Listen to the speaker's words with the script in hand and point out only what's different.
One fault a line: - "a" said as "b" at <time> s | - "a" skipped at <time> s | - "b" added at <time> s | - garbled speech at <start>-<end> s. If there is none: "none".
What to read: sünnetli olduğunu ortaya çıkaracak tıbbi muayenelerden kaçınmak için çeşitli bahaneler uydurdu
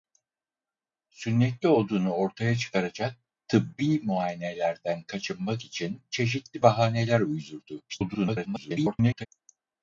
- garbled speech at 7.9-9.3 s